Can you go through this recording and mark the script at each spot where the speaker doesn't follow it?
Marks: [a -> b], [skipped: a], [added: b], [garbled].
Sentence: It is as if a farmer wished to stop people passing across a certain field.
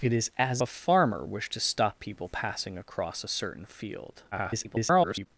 It is as [skipped: if] a farmer wished to stop people passing across a certain field. [garbled]